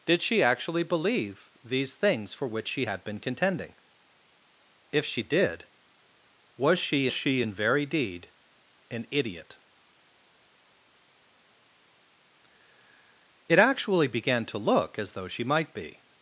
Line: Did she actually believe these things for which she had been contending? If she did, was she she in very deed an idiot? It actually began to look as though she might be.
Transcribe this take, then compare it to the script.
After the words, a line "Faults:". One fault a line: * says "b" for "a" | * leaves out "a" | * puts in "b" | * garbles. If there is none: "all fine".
Did she actually believe these things for which she had been contending? If she did, was she she in very deed an idiot? It actually began to look as though she might be.
Faults:
all fine